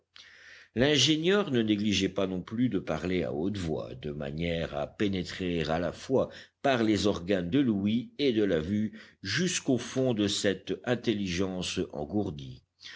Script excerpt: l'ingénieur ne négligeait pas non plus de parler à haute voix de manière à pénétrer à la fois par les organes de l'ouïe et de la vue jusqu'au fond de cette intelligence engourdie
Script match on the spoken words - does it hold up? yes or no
yes